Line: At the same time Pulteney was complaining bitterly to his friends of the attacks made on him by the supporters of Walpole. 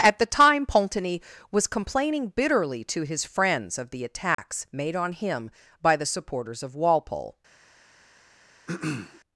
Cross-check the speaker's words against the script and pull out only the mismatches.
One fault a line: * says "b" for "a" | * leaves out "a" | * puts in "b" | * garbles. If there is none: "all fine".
* leaves out "same"